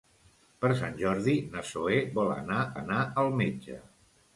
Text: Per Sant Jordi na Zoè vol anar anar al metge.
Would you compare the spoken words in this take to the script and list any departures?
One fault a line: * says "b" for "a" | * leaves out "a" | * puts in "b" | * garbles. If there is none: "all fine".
all fine